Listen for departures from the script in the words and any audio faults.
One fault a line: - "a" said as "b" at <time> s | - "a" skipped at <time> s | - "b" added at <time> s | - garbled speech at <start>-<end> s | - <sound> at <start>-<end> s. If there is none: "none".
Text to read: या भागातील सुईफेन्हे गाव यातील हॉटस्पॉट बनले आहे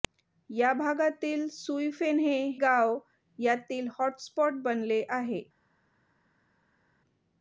none